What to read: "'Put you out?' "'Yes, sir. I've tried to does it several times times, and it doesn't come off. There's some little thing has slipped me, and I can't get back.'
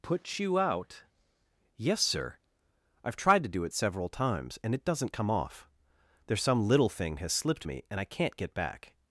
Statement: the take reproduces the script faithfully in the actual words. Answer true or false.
false